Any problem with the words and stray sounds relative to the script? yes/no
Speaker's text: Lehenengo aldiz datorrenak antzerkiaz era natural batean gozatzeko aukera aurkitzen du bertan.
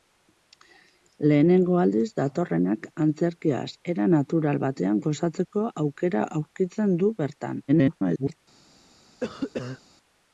yes